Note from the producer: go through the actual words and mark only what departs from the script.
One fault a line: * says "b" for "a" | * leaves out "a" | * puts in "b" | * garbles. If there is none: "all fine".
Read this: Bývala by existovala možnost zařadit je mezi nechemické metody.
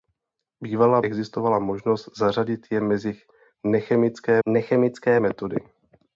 * leaves out "by"
* puts in "nechemické"